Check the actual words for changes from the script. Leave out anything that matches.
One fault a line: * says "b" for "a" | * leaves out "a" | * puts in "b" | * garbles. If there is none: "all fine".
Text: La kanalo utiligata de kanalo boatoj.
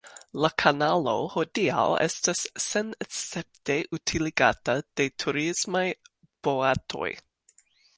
* puts in "hodiaŭ estas senescepte"
* says "turismaj" for "kanalo"